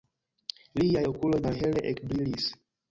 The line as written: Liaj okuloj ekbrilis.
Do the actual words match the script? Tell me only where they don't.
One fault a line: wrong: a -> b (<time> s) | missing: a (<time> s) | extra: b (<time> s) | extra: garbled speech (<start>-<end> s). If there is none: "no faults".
extra: malhele (1.5 s)